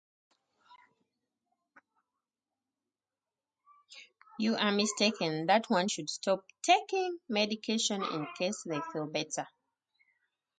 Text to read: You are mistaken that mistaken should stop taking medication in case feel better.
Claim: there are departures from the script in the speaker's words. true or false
true